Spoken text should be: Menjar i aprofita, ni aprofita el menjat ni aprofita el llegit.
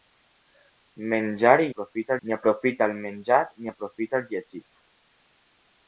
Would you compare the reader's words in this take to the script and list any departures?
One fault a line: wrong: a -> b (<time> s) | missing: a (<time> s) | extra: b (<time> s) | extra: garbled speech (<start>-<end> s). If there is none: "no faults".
no faults